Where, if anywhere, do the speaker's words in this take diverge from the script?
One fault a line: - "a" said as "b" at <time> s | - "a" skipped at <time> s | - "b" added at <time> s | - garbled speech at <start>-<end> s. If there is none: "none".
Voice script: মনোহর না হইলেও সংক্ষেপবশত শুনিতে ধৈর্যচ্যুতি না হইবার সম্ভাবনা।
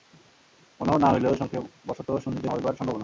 - "ধৈর্যচ্যুতি না" skipped at 2.5 s